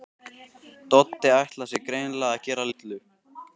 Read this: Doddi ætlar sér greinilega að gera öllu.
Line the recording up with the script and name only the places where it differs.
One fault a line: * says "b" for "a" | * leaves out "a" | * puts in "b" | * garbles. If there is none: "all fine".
all fine